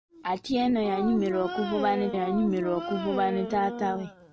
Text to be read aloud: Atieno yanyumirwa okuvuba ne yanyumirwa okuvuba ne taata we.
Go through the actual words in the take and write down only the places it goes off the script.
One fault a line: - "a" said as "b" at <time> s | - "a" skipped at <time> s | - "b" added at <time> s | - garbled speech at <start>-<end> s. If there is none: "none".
none